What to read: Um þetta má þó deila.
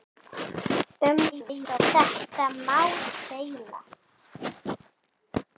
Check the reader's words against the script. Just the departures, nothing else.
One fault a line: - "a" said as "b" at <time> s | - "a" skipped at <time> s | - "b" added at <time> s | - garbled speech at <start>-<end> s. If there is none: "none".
- garbled speech at 1.3-1.8 s
- "þó" skipped at 2.8 s